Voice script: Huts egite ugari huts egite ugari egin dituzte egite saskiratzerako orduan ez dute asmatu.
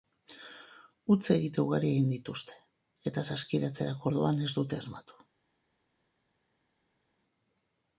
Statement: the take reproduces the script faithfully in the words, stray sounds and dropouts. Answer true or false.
false